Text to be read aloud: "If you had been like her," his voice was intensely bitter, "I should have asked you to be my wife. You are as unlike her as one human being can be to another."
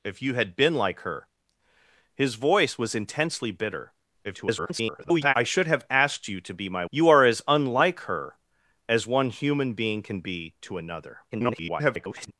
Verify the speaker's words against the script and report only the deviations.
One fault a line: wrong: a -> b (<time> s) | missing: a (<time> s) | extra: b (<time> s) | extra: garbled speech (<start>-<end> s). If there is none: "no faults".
extra: garbled speech (4.2-5.3 s)
missing: wife (6.8 s)
extra: garbled speech (11.3-12.3 s)